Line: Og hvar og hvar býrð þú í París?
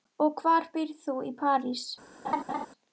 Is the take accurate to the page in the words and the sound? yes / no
no